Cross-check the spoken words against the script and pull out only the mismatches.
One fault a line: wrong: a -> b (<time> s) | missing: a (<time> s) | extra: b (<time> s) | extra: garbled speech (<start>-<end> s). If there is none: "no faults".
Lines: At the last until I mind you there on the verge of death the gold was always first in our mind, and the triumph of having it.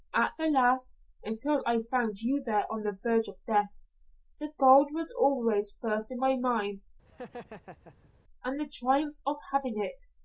wrong: mind -> found (1.9 s)
wrong: our -> my (6.2 s)